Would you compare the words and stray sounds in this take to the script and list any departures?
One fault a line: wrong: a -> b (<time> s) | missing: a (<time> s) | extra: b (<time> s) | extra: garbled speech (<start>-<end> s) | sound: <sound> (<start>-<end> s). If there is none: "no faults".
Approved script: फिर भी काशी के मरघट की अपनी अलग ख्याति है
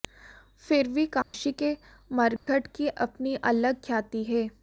sound: dropout (1.2-1.3 s)
sound: dropout (2.4-2.5 s)